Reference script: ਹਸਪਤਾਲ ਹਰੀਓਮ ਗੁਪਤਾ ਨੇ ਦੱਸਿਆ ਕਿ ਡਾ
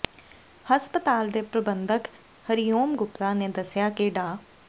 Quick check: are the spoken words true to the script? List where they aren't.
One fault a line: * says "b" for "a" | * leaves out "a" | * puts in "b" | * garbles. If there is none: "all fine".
* puts in "ਦੇ ਪ੍ਰਬੰਧਕ"